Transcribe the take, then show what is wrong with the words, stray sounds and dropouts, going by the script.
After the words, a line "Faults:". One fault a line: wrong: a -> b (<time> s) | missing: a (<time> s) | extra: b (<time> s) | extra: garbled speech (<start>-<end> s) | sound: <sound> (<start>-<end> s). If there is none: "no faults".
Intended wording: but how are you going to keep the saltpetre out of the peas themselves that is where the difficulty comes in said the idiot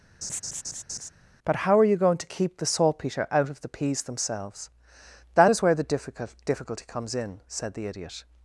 but how are you going to keep the saltpetre out of the peas themselves that is where the difficult difficulty comes in said the idiot
Faults:
sound: laugh (0.2-1.1 s)
extra: difficult (5.8 s)